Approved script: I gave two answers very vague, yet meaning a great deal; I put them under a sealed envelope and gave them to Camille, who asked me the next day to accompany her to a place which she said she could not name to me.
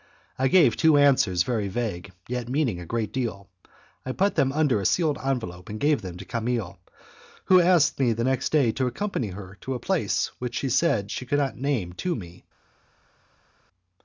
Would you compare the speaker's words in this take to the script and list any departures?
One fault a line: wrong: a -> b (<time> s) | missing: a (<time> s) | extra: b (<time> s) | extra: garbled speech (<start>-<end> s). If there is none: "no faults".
no faults